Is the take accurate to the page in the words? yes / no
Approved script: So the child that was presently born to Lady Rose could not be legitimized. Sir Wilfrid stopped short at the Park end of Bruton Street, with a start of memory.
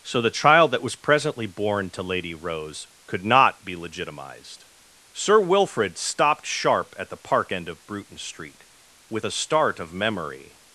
no